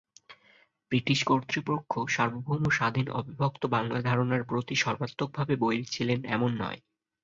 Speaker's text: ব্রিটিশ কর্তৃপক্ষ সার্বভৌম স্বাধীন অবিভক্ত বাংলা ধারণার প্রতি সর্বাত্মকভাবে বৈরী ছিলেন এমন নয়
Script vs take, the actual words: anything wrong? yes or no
no